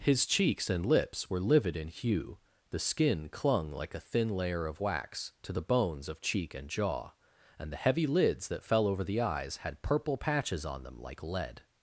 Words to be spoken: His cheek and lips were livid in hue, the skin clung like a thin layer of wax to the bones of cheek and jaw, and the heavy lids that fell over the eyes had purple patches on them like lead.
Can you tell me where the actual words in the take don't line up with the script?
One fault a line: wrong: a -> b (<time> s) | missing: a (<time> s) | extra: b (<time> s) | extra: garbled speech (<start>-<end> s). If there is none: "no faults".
wrong: cheek -> cheeks (0.2 s)